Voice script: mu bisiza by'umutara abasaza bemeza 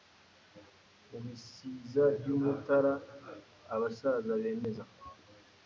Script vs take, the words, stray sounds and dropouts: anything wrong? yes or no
no